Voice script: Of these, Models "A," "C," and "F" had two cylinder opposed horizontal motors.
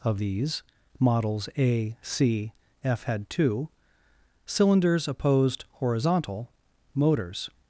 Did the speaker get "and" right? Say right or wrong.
wrong